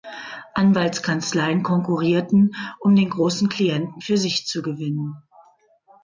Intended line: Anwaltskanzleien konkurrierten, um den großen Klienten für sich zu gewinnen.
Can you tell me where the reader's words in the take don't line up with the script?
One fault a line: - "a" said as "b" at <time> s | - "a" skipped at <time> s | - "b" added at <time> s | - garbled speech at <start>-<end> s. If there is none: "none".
none